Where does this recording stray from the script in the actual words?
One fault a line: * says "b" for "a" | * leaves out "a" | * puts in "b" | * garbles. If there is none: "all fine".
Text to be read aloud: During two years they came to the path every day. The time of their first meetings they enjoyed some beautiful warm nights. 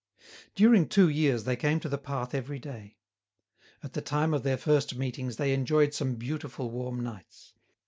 * puts in "At"